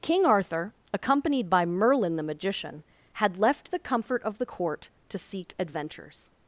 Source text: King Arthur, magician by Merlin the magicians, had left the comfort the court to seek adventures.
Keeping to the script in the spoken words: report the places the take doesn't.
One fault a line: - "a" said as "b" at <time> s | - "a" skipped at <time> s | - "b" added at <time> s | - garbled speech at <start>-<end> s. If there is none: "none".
- "magician" said as "accompanied" at 0.9 s
- "magicians" said as "magician" at 2.2 s
- "of" added at 4.2 s